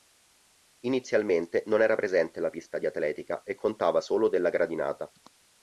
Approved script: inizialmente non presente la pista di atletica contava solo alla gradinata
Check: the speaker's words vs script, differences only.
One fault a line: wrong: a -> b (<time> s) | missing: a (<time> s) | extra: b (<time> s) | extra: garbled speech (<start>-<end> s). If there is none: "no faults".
extra: era (1.8 s)
extra: e (3.4 s)
wrong: alla -> della (4.3 s)